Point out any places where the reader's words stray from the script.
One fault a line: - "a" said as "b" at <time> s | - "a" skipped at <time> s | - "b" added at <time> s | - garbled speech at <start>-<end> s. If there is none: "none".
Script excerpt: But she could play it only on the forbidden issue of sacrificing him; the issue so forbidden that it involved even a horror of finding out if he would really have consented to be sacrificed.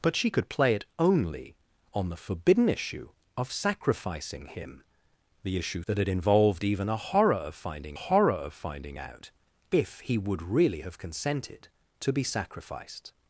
- "so forbidden" skipped at 5.8 s
- "horror of finding" added at 7.9 s